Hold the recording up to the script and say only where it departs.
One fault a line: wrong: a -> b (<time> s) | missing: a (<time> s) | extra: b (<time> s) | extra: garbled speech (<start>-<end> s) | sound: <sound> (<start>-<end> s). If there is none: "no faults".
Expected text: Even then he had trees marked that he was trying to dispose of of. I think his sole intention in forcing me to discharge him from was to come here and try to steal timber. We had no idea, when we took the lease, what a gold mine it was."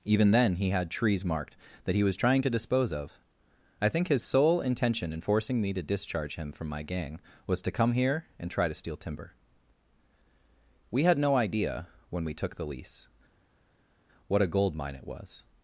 missing: of (3.1 s)
extra: my gang (6.7 s)